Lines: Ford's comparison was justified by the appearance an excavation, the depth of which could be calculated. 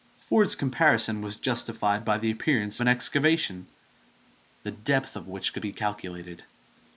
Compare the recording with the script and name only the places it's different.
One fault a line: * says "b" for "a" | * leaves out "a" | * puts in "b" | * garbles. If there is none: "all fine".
all fine